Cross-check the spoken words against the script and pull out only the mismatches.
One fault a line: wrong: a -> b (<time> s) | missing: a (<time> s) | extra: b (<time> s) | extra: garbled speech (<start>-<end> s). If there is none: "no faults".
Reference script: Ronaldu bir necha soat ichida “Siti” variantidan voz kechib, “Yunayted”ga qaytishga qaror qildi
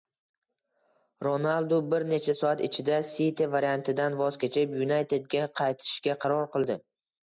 no faults